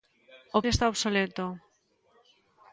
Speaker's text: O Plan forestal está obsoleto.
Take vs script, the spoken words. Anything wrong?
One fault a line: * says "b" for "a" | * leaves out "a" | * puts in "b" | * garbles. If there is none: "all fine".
* leaves out "Plan forestal"